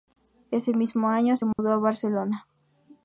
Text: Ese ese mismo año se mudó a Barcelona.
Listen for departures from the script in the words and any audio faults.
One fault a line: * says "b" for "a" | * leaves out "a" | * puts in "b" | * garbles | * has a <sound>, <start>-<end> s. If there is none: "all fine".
* leaves out "ese"
* has a dropout, 1.5-1.6 s